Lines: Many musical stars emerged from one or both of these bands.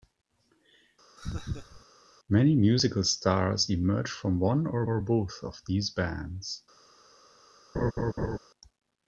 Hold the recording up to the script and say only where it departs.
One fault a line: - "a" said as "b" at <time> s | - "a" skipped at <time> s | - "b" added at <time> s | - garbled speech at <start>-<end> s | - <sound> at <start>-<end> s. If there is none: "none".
- laugh at 1.2-1.8 s
- "or" added at 4.9 s
- laugh at 7.7-8.4 s